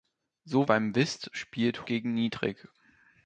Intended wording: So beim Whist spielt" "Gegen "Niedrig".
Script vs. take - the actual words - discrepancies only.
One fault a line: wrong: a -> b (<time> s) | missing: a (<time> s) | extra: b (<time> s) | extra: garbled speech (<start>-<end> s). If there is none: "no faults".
no faults